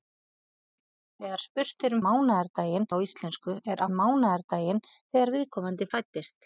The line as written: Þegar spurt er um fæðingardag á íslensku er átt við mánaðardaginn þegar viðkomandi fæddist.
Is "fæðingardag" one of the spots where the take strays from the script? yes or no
yes